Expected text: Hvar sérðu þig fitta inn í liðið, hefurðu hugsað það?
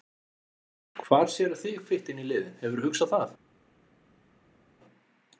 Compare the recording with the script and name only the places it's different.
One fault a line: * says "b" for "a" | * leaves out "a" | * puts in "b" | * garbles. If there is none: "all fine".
all fine